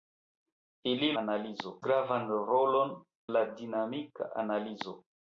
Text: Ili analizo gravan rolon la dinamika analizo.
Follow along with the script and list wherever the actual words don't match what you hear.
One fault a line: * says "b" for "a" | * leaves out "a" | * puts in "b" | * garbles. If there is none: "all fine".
all fine